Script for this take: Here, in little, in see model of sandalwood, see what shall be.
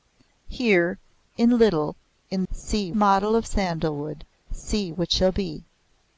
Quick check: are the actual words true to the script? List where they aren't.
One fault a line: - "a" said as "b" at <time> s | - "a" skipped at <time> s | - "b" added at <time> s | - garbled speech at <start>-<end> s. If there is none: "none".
none